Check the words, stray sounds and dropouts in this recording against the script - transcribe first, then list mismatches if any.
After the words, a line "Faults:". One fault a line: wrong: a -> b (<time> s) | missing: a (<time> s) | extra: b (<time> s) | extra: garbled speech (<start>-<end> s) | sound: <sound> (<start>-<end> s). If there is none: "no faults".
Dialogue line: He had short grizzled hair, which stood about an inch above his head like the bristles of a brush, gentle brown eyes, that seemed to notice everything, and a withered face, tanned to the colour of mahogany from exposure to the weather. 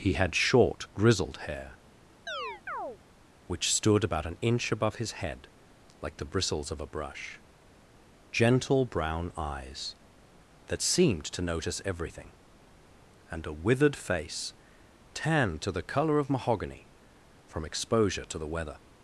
He had short grizzled hair, which stood about an inch above his head like the bristles of a brush, gentle brown eyes, that seemed to notice everything, and a withered face, tanned to the colour of mahogany from exposure to the weather.
Faults:
sound: chirp (2.3-3.0 s)